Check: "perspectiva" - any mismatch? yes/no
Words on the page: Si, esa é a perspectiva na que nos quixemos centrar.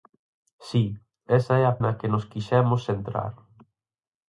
yes